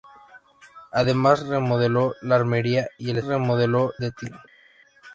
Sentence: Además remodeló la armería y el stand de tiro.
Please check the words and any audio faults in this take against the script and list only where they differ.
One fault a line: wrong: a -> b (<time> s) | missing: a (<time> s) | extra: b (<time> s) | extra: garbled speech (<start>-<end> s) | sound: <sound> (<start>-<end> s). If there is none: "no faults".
wrong: stand -> remodeló (3.2 s)